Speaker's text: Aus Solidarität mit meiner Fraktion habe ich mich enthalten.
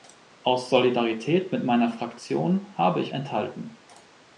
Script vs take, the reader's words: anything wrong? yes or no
yes